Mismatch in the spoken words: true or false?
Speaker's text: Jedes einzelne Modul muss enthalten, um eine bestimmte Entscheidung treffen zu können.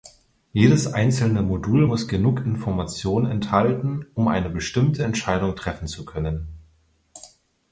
true